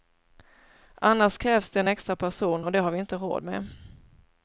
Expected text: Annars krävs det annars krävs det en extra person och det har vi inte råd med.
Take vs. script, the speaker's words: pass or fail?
fail